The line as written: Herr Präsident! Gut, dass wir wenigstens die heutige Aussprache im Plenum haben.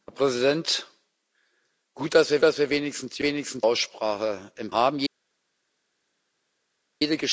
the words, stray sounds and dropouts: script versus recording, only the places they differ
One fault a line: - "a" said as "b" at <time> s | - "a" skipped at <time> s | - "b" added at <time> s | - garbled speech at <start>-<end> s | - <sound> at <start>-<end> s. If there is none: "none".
- "dass wir" added at 2.4 s
- "heutige" said as "wenigstens" at 3.2 s
- "Plenum" skipped at 4.7 s